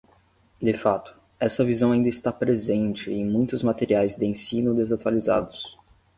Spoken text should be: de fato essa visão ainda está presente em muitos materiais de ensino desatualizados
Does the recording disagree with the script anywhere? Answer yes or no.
no